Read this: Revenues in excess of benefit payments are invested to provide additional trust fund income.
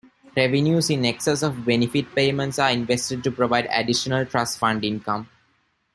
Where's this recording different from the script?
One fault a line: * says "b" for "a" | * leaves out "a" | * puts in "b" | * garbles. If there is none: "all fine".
all fine